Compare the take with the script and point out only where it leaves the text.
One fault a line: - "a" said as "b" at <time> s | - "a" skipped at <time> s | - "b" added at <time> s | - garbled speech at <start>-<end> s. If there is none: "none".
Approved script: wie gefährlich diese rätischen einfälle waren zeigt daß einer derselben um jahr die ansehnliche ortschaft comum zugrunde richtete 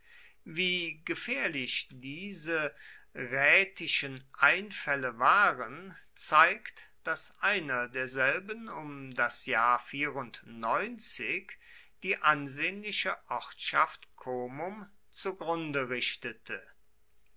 - "das" added at 9.1 s